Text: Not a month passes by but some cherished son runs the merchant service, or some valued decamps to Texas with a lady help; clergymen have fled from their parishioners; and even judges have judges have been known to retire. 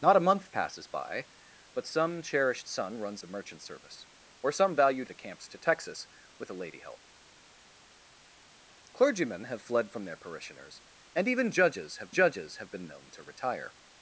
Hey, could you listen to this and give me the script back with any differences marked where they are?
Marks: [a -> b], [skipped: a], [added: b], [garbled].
Not a month passes by but some cherished son runs the merchant service, or some valued decamps to Texas with a lady help; clergymen have fled from their parishioners; and even judges have judges have been known to retire.